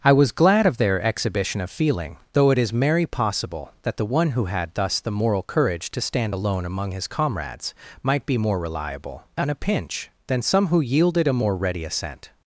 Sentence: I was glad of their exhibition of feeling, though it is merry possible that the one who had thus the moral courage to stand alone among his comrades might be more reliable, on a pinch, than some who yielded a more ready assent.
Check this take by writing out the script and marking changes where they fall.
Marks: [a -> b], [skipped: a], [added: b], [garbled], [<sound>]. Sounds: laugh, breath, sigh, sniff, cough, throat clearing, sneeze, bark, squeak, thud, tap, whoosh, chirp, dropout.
I was glad of their exhibition of feeling, though it is merry possible that the one who had thus the moral courage to stand alone among his comrades might be more reliable, on a pinch, than some who yielded a more ready assent.